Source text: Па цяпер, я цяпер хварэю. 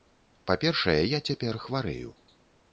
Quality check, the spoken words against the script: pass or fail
fail